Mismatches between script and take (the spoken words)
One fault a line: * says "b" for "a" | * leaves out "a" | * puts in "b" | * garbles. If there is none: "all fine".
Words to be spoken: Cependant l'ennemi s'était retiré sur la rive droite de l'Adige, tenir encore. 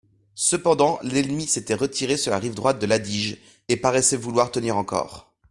* puts in "et paraissait vouloir"